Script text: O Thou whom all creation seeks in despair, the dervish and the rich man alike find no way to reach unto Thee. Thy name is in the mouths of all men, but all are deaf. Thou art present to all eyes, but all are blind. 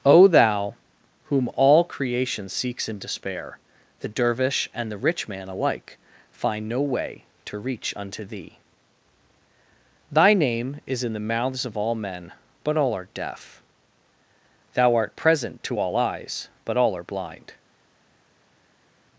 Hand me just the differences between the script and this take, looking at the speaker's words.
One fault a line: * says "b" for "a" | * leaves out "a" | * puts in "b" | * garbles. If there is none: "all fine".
all fine